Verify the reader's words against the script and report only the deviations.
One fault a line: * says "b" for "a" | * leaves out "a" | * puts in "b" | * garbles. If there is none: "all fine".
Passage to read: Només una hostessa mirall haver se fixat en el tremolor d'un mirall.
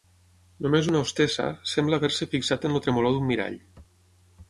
* says "sembla" for "mirall"